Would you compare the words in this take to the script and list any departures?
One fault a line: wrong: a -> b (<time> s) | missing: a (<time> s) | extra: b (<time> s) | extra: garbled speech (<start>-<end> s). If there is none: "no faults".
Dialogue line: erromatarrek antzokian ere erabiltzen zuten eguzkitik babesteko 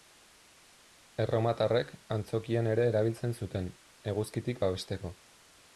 no faults